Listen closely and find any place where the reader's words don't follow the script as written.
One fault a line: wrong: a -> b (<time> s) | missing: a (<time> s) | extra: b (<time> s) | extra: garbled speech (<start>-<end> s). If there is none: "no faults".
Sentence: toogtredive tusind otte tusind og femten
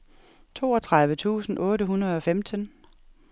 wrong: tusind -> hundrede (1.8 s)